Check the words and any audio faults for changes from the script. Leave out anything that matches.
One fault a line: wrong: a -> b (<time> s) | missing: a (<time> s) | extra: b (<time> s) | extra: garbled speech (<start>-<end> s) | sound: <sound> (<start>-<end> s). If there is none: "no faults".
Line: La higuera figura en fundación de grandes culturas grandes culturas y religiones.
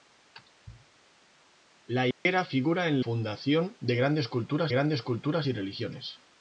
sound: dropout (2.1-2.3 s)